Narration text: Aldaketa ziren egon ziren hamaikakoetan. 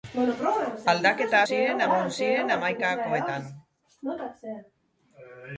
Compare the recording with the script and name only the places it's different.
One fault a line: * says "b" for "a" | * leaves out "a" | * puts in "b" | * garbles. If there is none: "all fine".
all fine